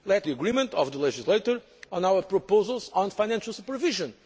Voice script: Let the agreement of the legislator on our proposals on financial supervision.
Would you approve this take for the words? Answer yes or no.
yes